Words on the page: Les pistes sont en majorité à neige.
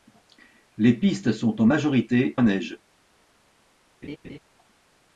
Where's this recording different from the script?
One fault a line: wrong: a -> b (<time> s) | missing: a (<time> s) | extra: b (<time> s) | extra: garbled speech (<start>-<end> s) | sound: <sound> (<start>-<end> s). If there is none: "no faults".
sound: laugh (4.0-4.4 s)